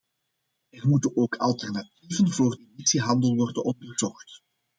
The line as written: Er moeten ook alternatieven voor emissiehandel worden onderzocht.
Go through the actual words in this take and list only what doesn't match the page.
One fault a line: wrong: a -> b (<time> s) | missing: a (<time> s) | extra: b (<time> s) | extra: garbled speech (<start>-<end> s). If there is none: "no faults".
no faults